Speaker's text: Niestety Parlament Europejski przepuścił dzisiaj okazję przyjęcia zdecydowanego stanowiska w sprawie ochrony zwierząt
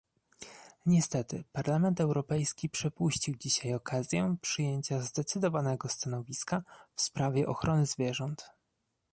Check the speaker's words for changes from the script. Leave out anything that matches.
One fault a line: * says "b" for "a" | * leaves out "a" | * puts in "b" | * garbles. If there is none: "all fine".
all fine